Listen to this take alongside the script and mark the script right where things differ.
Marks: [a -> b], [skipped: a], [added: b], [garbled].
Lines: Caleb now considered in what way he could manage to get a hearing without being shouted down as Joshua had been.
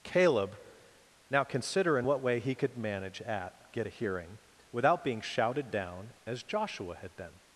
Caleb now [considered -> consider] in what way he could manage [to -> at] get a hearing without being shouted down as Joshua had been.